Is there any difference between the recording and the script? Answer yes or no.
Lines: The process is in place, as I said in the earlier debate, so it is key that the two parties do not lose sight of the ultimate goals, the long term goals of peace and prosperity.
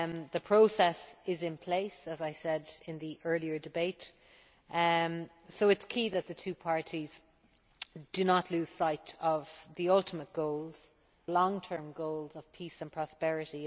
yes